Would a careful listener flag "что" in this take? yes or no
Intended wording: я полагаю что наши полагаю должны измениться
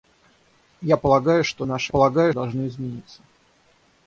no